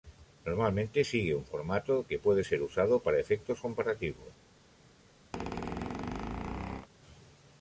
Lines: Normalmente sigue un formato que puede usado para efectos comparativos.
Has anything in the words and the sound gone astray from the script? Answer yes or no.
yes